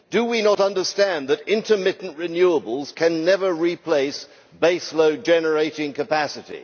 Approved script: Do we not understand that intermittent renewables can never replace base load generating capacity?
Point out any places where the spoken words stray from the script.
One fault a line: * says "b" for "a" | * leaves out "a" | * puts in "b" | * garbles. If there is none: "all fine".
all fine